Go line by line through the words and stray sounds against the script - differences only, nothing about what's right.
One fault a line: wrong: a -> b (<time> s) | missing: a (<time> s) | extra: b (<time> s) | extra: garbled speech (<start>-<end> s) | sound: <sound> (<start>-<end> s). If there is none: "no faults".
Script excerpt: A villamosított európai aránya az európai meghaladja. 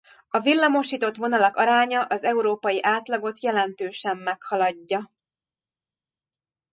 wrong: európai -> vonalak (1.1 s)
extra: átlagot jelentősen (2.8 s)